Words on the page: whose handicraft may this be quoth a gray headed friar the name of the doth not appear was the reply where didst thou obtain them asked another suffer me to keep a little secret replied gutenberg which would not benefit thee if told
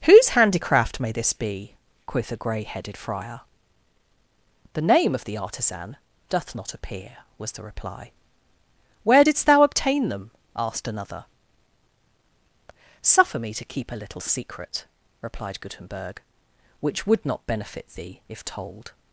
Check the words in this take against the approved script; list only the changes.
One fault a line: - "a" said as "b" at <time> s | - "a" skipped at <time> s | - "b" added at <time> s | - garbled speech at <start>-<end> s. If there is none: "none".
- "artisan" added at 5.4 s